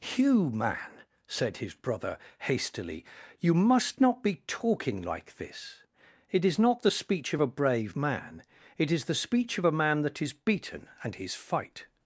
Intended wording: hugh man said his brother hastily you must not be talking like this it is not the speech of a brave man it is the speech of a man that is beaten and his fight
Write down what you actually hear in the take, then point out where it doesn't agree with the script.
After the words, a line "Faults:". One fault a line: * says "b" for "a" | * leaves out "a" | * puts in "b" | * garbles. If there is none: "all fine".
hugh man said his brother hastily you must not be talking like this it is not the speech of a brave man it is the speech of a man that is beaten and his fight
Faults:
all fine